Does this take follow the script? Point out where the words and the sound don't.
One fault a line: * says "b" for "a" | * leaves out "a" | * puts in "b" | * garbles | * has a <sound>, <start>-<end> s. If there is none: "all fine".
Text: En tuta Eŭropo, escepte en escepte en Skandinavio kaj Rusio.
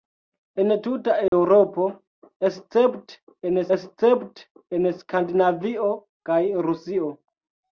* has a dropout, 1.3-1.3 s